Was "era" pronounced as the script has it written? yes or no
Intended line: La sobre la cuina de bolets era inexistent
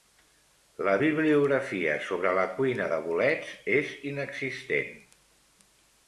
no